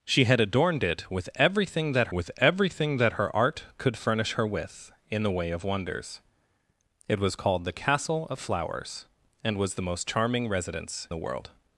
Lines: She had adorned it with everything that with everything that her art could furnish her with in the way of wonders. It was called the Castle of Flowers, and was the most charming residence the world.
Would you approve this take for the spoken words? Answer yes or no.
yes